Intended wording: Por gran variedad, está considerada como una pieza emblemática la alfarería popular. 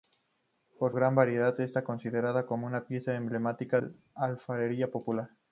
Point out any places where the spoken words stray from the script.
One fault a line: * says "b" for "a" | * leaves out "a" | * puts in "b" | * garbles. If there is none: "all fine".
all fine